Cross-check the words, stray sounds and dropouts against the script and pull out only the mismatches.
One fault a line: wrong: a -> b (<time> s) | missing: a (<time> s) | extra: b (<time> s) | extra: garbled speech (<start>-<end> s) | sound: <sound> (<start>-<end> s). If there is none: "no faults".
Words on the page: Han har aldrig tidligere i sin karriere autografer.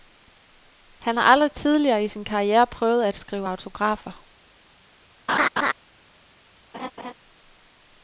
extra: prøvet at skrive (2.7 s)
sound: laugh (5.3-5.7 s)
sound: laugh (6.7-7.1 s)